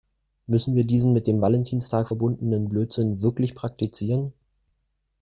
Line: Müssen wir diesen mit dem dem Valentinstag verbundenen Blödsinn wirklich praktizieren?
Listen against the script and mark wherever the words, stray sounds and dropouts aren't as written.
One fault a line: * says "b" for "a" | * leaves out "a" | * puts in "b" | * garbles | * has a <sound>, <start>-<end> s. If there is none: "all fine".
* leaves out "dem"